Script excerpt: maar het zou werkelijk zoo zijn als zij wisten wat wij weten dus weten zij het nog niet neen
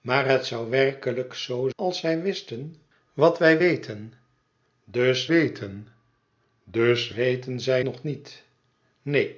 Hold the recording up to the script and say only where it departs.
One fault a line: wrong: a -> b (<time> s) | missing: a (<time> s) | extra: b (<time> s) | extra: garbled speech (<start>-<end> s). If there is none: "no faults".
missing: zijn (1.7 s)
extra: dus weten (6.6 s)
missing: het (7.8 s)